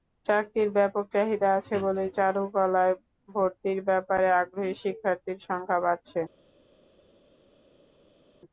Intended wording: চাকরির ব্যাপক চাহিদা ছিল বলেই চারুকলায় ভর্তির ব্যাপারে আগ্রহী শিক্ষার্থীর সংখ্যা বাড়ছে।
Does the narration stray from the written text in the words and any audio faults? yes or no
yes